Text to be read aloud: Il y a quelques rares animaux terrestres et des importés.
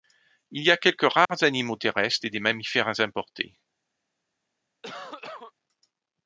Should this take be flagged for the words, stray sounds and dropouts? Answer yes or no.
yes